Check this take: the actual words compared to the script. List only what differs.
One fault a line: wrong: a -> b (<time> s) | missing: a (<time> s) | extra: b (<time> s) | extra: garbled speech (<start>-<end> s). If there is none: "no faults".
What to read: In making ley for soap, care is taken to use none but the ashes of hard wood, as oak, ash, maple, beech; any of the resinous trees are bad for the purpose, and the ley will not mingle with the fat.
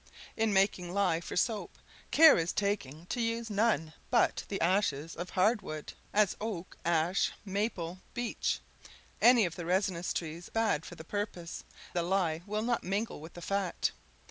missing: are (10.5 s)
missing: and (11.6 s)